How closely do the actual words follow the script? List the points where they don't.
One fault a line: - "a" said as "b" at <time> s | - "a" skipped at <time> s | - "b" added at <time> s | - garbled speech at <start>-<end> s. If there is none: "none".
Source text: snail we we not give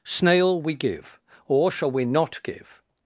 - "give or shall" added at 0.7 s